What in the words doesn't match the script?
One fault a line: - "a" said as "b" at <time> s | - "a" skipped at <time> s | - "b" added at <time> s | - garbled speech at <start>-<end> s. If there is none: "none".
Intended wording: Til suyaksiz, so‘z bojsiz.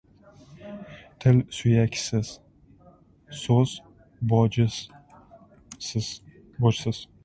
none